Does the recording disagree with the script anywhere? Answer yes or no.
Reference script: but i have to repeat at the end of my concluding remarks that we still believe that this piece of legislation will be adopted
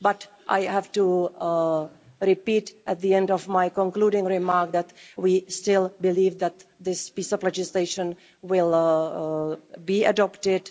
no